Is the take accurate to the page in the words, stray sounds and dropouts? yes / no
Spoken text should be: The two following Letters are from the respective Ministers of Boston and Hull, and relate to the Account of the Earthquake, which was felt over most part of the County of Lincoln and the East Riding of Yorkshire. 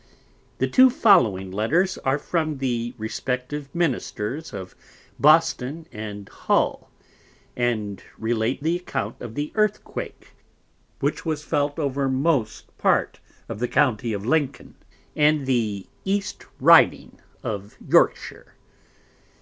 no